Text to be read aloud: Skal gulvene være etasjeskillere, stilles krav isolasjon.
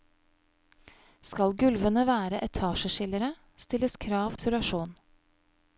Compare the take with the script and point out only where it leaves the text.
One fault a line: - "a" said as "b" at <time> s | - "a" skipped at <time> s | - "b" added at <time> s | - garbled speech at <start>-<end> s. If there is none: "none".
none